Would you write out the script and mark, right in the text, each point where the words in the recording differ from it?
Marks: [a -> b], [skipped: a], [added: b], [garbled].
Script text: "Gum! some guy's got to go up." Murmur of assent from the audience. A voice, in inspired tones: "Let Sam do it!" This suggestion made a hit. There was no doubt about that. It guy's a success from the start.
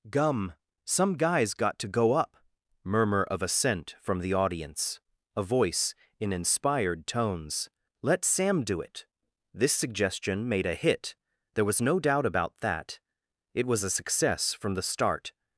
"Gum! some guy's got to go up." Murmur of assent from the audience. A voice, in inspired tones: "Let Sam do it!" This suggestion made a hit. There was no doubt about that. It [guy's -> was] a success from the start.